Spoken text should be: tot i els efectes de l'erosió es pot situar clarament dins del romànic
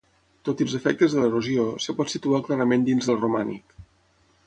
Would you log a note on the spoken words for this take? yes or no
no